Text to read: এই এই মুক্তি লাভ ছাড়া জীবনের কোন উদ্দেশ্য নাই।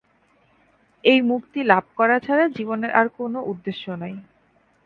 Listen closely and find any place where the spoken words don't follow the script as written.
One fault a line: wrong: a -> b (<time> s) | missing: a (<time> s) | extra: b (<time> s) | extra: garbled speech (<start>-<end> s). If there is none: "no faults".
missing: এই (1.2 s)
extra: করা (1.9 s)
extra: আর (2.9 s)